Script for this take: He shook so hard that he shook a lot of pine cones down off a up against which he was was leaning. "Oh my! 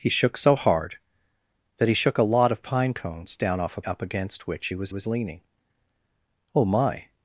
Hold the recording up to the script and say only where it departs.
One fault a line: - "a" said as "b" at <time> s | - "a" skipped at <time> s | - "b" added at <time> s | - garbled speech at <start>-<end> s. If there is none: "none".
none